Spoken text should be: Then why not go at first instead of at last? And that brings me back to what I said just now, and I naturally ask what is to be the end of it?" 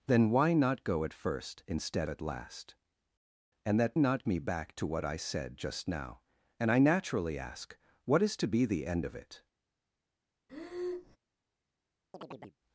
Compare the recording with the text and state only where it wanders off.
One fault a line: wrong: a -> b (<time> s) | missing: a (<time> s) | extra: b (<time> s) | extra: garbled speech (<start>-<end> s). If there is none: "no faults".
missing: of (2.1 s)
wrong: brings -> not (4.0 s)